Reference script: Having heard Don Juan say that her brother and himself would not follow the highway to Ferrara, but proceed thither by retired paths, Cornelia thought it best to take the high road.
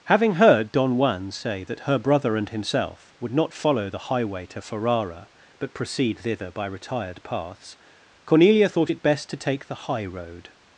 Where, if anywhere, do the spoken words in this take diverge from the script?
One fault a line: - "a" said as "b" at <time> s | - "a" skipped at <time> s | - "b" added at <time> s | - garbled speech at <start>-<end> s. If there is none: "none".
none